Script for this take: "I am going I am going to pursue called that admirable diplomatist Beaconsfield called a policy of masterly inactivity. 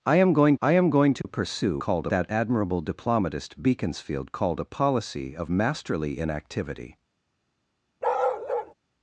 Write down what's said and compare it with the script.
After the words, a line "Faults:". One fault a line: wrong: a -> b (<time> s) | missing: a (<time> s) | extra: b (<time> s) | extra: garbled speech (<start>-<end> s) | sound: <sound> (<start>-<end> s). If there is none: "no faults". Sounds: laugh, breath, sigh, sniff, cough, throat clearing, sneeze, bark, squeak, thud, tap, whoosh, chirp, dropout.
"I am going I am going to pursue called that admirable diplomatist Beaconsfield called a policy of masterly inactivity.
Faults:
sound: dropout (1.2-1.2 s)
sound: bark (8.0-8.7 s)